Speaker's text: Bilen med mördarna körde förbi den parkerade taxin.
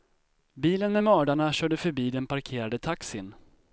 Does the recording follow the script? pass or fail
pass